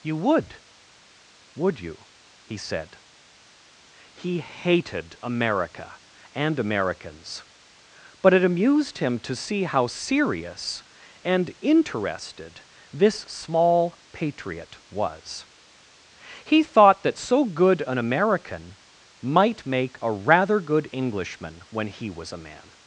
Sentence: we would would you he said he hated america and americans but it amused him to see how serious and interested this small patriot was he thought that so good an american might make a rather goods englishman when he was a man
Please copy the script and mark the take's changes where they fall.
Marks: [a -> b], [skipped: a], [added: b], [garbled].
[we -> you] would would you he said he hated america and americans but it amused him to see how serious and interested this small patriot was he thought that so good an american might make a rather [goods -> good] englishman when he was a man